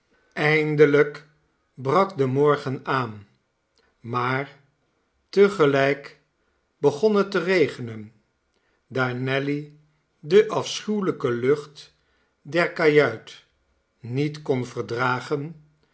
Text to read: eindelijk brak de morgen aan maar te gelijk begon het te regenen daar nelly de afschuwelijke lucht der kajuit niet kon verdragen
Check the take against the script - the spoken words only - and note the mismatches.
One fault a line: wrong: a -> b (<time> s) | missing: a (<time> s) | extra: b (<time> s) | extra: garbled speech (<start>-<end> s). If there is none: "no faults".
no faults